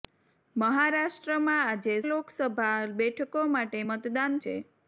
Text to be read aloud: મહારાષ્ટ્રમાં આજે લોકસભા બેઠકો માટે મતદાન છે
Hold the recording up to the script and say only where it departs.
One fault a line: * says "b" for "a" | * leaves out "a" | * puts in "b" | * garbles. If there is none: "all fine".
all fine